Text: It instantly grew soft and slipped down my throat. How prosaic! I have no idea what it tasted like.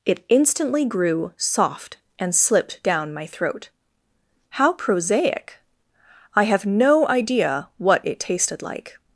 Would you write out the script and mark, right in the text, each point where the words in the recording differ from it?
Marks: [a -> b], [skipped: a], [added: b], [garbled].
It instantly grew soft and slipped down my throat. How prosaic! I have no idea what it tasted like.